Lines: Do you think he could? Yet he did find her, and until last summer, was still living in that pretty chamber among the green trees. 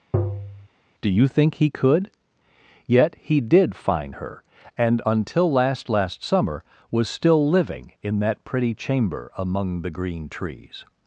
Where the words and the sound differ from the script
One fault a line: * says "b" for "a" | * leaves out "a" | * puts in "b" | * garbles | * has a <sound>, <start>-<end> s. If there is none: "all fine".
* has a tap, 0.1-0.7 s
* puts in "last"